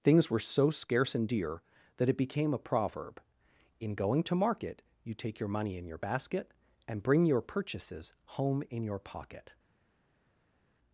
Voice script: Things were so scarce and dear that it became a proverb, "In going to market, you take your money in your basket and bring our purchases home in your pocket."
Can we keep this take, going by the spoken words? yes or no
no